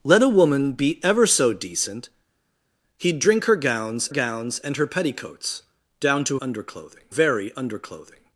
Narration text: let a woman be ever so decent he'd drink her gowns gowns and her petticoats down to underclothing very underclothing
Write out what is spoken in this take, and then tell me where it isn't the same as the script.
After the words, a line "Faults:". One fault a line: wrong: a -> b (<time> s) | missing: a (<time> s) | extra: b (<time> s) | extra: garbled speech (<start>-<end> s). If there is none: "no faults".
let a woman be ever so decent he'd drink her gowns gowns and her petticoats down to underclothing very underclothing
Faults:
no faults